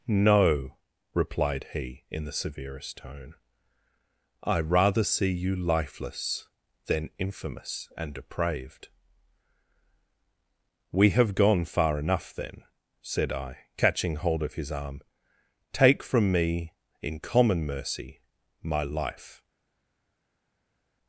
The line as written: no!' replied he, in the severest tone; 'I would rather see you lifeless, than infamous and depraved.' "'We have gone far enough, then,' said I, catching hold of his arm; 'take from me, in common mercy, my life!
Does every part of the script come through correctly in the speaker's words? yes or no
no